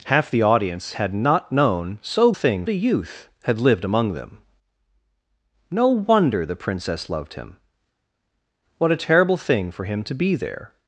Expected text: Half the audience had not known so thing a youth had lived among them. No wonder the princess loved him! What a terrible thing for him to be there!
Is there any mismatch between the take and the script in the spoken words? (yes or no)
no